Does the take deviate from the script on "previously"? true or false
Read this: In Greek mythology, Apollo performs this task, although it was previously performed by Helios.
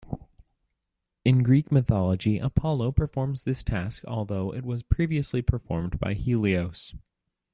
false